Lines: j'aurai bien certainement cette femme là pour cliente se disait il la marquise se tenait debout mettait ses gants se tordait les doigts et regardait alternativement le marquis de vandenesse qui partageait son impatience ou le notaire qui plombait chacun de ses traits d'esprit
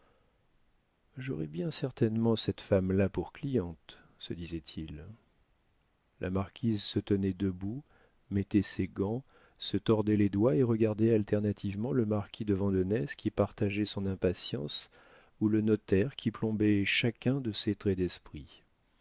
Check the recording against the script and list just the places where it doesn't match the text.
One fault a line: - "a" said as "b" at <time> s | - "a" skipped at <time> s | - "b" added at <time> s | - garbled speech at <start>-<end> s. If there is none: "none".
none